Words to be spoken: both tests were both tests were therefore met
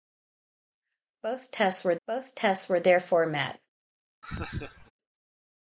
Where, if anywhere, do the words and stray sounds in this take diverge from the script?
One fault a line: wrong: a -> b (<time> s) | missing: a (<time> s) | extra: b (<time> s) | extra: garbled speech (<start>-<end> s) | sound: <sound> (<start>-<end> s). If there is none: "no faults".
sound: laugh (4.2-4.9 s)